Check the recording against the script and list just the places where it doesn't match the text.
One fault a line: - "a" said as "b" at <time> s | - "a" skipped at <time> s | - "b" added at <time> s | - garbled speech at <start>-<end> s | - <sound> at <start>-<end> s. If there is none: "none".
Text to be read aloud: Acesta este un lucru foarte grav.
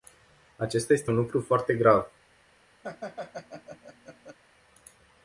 - laugh at 2.8-4.4 s